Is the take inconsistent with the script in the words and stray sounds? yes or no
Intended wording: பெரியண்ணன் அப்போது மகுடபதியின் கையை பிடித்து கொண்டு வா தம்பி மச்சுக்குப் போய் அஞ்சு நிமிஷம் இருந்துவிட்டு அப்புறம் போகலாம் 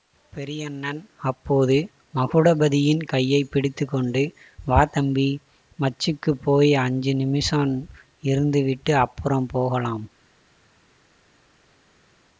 no